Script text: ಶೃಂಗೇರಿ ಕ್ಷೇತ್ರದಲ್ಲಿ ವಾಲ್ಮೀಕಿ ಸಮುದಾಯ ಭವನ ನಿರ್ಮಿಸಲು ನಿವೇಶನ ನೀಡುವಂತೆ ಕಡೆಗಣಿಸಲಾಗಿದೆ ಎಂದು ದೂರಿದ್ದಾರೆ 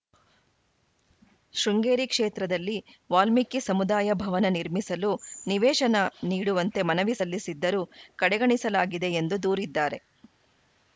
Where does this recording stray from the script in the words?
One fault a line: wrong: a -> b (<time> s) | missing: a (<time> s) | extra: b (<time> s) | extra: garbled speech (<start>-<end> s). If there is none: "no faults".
extra: ಮನವಿ ಸಲ್ಲಿಸಿದ್ದರೂ (6.9 s)